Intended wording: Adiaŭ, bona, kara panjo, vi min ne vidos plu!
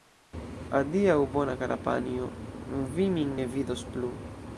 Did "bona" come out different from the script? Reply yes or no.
no